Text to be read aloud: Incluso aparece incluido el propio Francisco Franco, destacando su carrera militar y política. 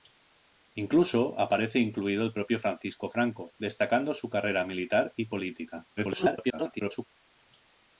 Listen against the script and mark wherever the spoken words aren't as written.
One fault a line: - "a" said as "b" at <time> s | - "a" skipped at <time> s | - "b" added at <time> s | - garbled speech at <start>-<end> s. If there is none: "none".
- garbled speech at 6.0-7.1 s